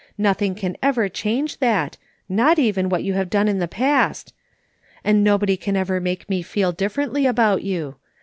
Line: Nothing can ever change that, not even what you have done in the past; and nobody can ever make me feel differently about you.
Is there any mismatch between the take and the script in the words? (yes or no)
no